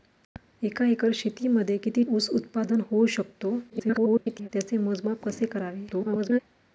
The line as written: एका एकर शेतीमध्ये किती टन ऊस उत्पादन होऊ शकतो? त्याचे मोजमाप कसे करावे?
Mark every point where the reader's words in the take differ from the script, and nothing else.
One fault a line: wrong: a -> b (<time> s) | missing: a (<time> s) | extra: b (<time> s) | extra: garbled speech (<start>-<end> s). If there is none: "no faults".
missing: टन (2.0 s)
extra: garbled speech (3.7-4.5 s)
extra: garbled speech (5.9-6.4 s)